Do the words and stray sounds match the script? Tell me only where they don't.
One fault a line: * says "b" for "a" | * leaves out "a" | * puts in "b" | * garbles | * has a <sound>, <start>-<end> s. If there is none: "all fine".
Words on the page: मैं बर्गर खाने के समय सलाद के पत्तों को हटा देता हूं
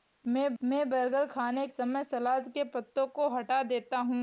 * puts in "मैं"
* leaves out "के"